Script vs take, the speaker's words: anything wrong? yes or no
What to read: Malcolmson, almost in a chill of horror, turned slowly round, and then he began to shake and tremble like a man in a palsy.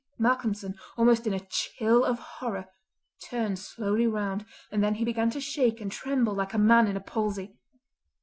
no